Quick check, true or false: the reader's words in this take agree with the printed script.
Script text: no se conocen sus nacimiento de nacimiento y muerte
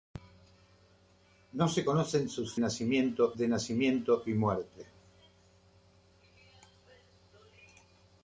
true